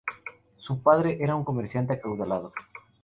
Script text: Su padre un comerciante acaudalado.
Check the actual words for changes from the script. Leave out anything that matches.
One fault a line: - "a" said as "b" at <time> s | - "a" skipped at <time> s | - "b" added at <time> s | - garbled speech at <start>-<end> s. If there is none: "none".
- "era" added at 1.2 s